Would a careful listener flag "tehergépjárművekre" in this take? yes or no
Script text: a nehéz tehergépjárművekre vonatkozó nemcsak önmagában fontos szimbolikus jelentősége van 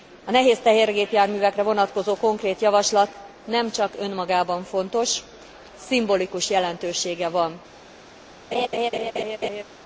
no